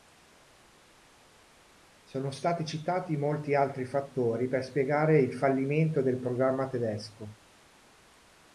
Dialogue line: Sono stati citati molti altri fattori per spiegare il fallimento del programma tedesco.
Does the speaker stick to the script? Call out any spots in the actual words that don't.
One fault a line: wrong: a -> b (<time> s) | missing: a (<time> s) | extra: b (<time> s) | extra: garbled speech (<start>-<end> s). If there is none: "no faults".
no faults